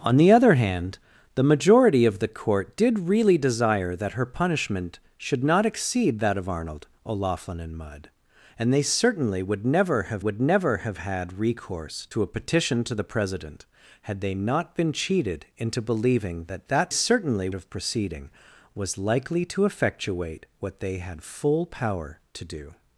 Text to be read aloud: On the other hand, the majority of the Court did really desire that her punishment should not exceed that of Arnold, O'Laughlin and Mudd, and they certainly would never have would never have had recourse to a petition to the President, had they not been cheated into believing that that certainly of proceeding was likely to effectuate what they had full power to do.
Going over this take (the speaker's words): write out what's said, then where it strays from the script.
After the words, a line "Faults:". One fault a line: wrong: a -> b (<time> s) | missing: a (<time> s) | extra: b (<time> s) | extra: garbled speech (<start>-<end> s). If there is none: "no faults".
On the other hand, the majority of the Court did really desire that her punishment should not exceed that of Arnold, O'Laughlin and Mudd, and they certainly would never have would never have had recourse to a petition to the President, had they not been cheated into believing that that certainly of proceeding was likely to effectuate what they had full power to do.
Faults:
no faults